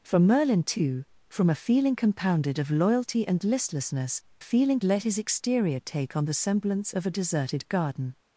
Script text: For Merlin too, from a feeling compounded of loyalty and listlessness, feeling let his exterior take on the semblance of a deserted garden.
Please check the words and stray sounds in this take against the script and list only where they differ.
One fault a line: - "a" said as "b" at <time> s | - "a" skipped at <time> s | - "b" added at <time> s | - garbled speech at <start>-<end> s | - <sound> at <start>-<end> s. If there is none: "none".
none